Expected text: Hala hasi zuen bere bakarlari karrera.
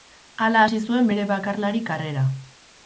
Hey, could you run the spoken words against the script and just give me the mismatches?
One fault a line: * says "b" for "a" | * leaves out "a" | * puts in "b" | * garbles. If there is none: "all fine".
all fine